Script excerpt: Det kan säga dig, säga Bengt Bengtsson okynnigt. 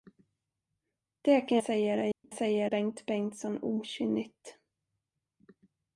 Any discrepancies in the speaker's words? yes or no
no